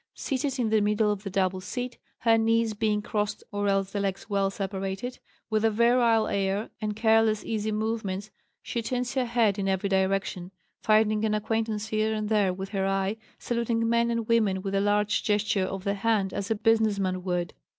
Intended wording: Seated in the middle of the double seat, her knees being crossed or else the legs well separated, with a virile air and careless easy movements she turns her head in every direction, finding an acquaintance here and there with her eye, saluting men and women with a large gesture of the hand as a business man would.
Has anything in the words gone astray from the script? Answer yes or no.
no